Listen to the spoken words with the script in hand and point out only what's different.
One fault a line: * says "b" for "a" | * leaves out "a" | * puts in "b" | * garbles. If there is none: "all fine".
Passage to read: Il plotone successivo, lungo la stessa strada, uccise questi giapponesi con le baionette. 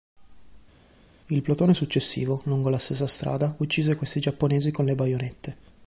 all fine